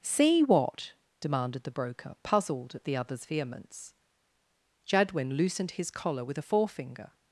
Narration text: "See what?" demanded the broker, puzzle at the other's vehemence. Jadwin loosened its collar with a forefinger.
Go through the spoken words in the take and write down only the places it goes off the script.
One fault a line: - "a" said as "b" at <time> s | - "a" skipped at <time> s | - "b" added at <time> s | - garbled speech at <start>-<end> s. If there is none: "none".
- "puzzle" said as "puzzled" at 2.2 s
- "its" said as "his" at 5.7 s